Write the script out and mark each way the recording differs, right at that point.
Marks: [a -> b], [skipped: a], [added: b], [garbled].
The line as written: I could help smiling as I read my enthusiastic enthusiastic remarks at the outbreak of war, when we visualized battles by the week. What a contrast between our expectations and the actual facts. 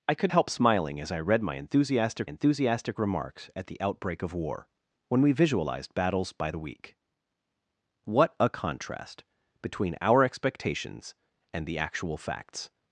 I could help smiling as I read my enthusiastic enthusiastic remarks at the outbreak of war, when we visualized battles by the week. What a contrast between our expectations and the actual facts.